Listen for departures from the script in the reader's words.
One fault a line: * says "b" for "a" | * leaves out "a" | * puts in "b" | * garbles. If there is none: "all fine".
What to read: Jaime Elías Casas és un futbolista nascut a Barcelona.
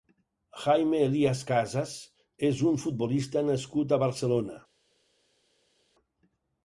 all fine